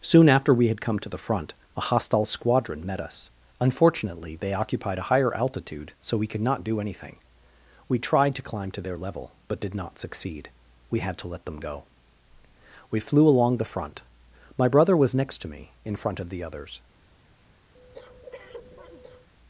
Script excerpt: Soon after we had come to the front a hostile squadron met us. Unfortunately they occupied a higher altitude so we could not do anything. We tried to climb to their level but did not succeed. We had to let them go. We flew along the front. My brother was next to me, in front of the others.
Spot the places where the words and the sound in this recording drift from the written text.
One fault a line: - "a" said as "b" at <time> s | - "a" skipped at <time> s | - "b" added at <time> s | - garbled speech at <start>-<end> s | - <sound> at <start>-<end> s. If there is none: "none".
- breath at 17.7-19.3 s